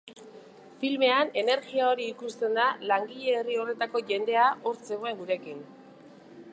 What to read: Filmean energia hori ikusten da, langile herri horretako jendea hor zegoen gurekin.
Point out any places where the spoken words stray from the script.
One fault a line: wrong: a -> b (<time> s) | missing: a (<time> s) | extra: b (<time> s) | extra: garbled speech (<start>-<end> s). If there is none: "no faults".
no faults